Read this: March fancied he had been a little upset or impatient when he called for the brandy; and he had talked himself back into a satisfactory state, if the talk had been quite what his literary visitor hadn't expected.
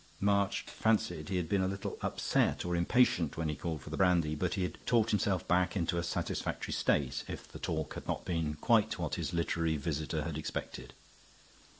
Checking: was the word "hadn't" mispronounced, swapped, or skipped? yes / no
yes